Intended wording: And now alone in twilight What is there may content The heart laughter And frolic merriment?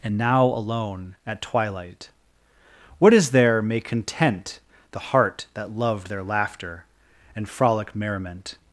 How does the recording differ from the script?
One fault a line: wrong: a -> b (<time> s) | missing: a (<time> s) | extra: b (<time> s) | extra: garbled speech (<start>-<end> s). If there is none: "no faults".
wrong: in -> at (1.3 s)
extra: that loved their (5.5 s)